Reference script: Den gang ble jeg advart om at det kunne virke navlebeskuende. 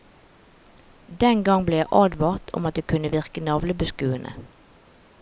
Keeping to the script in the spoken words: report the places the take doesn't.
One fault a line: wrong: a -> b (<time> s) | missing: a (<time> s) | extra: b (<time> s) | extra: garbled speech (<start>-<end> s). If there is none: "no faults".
no faults